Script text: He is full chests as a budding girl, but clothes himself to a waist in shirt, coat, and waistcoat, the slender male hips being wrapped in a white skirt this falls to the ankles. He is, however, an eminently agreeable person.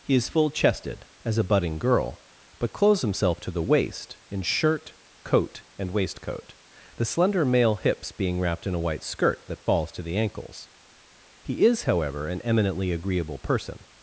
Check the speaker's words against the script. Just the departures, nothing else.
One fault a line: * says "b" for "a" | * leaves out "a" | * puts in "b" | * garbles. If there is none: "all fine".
* says "chested" for "chests"
* says "the" for "a"
* says "that" for "this"